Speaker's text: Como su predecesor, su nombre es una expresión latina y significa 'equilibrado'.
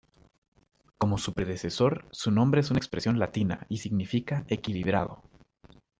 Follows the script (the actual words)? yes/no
yes